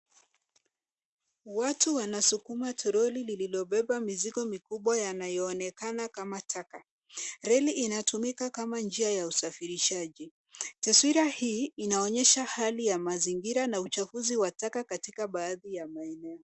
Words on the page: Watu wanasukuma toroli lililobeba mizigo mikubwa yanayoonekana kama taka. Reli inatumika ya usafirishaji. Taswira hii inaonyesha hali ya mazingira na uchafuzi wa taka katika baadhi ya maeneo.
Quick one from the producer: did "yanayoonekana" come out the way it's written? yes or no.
yes